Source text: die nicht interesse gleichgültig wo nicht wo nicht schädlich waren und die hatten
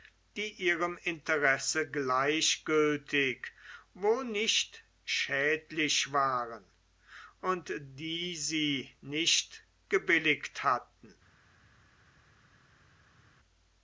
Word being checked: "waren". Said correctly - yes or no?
yes